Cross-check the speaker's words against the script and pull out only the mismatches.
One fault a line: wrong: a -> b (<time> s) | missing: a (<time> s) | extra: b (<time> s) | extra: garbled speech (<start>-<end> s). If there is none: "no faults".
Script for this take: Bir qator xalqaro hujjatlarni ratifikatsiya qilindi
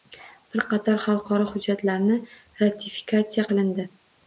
no faults